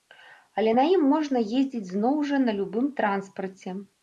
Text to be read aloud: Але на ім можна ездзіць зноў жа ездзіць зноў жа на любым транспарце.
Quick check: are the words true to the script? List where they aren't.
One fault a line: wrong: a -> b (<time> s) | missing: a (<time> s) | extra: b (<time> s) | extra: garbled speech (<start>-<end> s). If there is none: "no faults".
missing: ездзіць зноў жа (2.4 s)